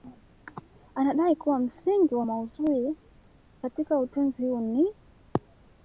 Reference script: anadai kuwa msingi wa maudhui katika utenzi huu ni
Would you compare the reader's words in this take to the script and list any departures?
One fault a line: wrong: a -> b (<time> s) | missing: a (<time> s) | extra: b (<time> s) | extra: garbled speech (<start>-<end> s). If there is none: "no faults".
no faults